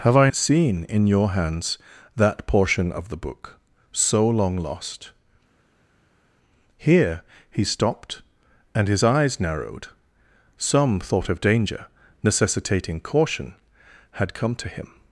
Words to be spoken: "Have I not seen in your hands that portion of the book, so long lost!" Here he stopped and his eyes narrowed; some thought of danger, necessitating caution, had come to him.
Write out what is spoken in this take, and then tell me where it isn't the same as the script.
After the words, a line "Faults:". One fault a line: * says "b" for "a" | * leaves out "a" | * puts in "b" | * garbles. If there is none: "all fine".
"Have I seen in your hands that portion of the book, so long lost!" Here he stopped and his eyes narrowed; some thought of danger, necessitating caution, had come to him.
Faults:
* leaves out "not"